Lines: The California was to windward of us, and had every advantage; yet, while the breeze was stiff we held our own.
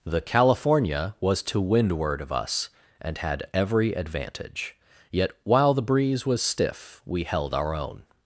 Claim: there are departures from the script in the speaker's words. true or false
false